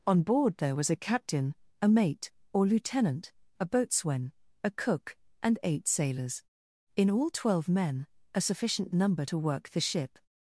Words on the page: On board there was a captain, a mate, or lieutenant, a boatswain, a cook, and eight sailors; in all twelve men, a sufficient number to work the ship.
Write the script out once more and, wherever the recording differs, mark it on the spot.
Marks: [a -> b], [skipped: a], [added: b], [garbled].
On board there was a captain, a mate, or lieutenant, a boatswain, a cook, and eight sailors; in all twelve men, a sufficient number to work the ship.